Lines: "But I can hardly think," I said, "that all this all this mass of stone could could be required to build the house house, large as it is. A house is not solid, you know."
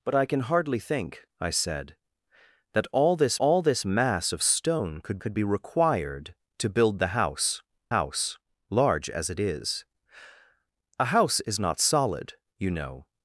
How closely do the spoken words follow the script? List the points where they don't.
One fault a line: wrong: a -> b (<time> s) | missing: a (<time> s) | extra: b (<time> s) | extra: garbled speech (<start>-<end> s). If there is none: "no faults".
no faults